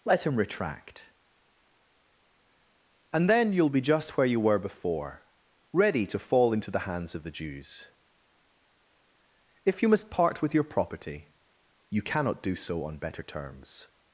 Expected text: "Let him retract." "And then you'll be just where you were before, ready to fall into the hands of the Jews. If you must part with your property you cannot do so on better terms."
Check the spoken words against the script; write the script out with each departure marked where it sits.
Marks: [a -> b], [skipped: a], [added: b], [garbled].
"Let him retract." "And then you'll be just where you were before, ready to fall into the hands of the Jews. If you must part with your property you cannot do so on better terms."